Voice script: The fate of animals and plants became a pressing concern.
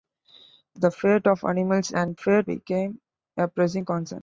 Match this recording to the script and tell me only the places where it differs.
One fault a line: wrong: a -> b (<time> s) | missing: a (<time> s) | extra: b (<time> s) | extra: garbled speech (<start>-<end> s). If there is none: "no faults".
wrong: plants -> fate (2.1 s)